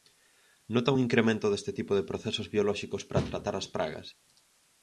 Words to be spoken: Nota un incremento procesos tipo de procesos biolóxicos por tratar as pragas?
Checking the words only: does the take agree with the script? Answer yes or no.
no